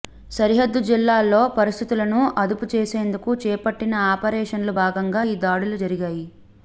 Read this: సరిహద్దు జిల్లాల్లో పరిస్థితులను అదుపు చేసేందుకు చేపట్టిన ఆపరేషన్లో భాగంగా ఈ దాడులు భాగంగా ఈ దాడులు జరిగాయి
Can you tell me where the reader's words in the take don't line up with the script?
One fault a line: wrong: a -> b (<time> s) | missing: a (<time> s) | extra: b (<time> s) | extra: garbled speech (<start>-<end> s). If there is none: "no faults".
missing: భాగంగా ఈ దాడులు (5.8 s)